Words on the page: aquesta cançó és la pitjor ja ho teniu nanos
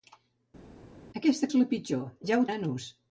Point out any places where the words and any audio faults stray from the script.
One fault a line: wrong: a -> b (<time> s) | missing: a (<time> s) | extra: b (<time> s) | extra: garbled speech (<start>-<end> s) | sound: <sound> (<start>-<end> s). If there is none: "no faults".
missing: cançó (1.5 s)
missing: teniu (2.5 s)